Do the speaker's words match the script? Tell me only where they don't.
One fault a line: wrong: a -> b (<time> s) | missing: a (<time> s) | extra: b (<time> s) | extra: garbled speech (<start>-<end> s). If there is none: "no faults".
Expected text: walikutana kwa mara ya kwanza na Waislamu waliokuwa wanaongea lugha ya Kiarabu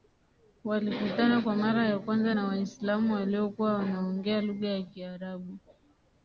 no faults